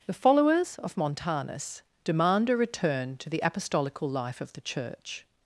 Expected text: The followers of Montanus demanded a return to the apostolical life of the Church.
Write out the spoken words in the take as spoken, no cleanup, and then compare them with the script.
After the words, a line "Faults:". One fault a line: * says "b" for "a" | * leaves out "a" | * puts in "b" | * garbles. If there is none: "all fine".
The followers of Montanus demand a return to the apostolical life of the Church.
Faults:
* says "demand" for "demanded"